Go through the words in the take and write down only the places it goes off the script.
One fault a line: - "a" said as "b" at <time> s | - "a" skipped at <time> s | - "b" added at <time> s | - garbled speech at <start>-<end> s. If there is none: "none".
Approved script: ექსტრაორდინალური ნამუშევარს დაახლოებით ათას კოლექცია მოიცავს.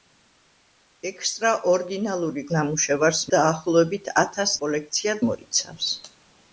none